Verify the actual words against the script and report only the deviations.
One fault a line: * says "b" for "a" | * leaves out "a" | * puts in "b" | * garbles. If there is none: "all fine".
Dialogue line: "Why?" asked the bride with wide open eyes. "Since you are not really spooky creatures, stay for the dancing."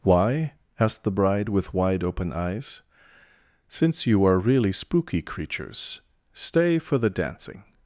* leaves out "not"